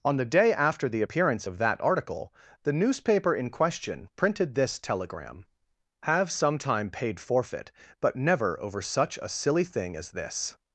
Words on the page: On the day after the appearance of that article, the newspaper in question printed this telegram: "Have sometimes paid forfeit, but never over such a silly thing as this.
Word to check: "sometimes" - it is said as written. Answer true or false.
false